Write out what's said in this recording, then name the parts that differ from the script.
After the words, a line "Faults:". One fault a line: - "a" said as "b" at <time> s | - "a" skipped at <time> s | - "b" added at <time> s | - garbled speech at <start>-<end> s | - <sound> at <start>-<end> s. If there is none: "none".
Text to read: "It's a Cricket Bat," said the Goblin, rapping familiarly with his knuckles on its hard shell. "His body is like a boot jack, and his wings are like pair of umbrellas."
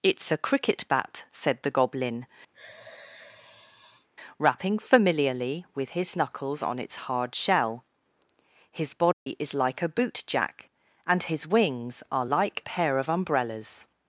"It's a Cricket Bat," said the Goblin, rapping familiarly with his knuckles on its hard shell. "His body is like a boot jack, and his wings are like pair of umbrellas."
Faults:
- sigh at 2.5-4.1 s
- dropout at 9.1-9.3 s